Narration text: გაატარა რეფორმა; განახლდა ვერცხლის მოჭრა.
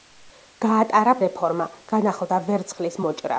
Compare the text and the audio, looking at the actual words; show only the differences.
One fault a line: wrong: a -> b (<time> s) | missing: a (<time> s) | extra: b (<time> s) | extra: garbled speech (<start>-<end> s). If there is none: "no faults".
no faults